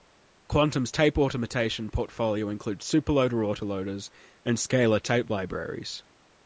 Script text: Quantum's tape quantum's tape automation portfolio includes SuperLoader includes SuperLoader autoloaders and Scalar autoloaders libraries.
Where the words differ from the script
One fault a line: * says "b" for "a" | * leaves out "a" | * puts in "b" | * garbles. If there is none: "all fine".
* leaves out "quantum's tape"
* leaves out "includes SuperLoader"
* says "tape" for "autoloaders"